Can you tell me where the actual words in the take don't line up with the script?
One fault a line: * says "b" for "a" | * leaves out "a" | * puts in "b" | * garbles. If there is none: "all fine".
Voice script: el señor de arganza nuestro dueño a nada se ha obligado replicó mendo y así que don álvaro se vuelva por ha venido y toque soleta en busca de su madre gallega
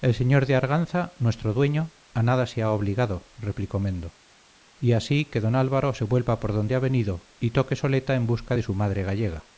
* puts in "donde"